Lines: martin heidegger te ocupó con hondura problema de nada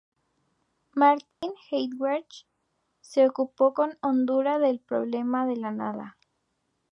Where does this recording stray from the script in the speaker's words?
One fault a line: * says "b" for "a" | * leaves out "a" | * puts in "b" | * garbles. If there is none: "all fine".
* says "se" for "te"
* puts in "del"
* puts in "la"